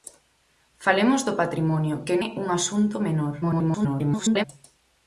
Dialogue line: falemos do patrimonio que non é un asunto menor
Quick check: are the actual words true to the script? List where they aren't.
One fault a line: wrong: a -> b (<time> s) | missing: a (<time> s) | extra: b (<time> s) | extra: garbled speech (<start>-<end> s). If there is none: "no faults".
missing: non (2.1 s)
extra: garbled speech (3.4-4.4 s)